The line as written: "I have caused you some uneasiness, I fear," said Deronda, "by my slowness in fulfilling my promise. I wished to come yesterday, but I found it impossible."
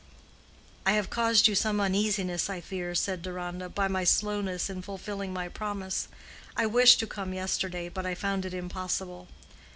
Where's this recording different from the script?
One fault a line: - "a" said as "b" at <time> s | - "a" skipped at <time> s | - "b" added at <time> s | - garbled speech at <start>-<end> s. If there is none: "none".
none